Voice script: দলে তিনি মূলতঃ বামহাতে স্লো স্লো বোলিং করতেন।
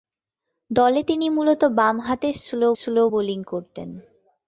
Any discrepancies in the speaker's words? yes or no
no